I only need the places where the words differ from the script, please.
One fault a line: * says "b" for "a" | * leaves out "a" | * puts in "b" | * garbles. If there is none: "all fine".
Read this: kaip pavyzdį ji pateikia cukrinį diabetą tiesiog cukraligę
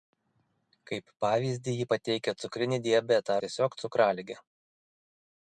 all fine